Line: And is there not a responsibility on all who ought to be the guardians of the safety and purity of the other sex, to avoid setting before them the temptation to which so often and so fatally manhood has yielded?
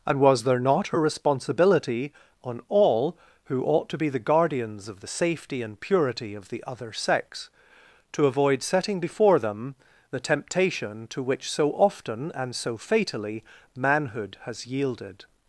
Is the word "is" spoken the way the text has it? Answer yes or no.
no